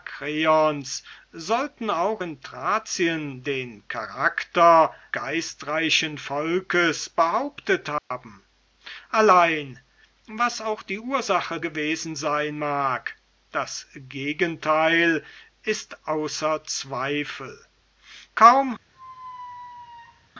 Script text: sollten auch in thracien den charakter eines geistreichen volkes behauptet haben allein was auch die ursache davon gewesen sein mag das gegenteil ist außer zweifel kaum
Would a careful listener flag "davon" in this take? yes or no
yes